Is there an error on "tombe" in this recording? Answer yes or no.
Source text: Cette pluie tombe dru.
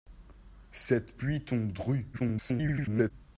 no